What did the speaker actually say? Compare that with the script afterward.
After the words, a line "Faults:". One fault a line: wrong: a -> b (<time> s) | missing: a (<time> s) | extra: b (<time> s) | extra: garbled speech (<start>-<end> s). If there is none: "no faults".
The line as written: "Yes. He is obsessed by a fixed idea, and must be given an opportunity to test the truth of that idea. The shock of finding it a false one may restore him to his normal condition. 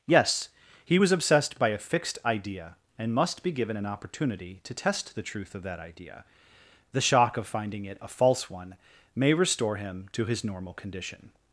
"Yes. He was obsessed by a fixed idea, and must be given an opportunity to test the truth of that idea. The shock of finding it a false one may restore him to his normal condition.
Faults:
wrong: is -> was (1.0 s)